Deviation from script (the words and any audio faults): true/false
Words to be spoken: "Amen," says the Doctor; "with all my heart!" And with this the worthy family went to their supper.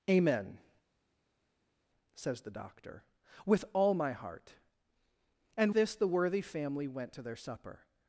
true